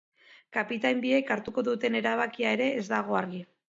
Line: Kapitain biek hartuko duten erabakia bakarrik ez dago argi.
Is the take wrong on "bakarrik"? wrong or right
wrong